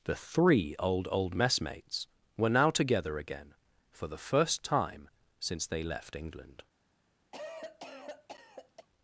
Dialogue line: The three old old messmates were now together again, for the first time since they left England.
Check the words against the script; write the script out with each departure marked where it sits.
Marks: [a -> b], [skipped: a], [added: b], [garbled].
The three old old messmates were now together again, for the first time since they left England.